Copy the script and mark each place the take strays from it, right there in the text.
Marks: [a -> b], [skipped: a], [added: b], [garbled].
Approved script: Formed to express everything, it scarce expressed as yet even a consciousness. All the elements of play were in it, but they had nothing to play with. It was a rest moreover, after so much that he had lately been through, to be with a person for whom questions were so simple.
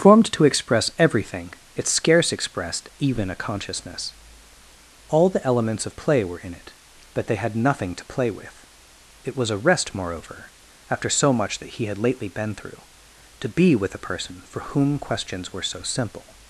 Formed to express everything, it scarce expressed [skipped: as yet] even a consciousness. All the elements of play were in it, but they had nothing to play with. It was a rest moreover, after so much that he had lately been through, to be with a person for whom questions were so simple.